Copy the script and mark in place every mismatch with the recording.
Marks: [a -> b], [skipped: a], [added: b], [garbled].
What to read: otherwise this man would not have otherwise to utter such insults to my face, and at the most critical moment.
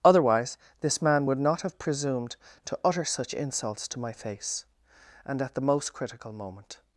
otherwise this man would not have [otherwise -> presumed] to utter such insults to my face, and at the most critical moment.